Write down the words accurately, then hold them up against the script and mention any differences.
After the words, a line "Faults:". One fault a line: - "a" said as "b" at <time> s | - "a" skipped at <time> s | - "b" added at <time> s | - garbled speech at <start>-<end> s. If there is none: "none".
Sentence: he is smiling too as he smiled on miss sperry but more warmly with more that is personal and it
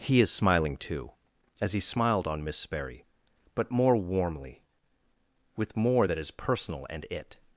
he is smiling too as he smiled on miss sperry but more warmly with more that is personal and it
Faults:
none